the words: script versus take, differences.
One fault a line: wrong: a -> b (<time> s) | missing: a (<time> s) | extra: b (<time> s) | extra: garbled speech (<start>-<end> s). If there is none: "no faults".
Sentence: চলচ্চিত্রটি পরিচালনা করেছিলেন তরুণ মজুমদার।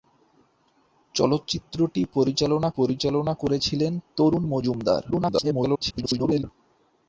extra: পরিচালনা (2.7 s)
extra: garbled speech (5.1-6.4 s)